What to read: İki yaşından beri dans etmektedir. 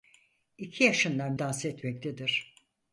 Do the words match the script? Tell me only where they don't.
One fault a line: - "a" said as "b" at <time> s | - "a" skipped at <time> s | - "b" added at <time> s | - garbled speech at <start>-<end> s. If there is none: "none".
- "beri" skipped at 1.4 s